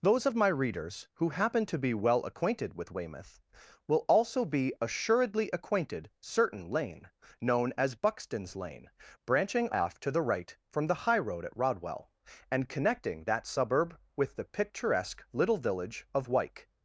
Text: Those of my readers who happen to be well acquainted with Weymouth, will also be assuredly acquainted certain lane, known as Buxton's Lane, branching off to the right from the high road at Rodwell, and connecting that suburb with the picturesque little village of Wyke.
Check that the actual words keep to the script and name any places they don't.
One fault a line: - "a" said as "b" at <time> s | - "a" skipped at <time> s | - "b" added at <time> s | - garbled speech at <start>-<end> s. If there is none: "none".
none